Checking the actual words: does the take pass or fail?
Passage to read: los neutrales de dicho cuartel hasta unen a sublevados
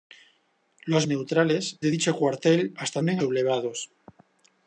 pass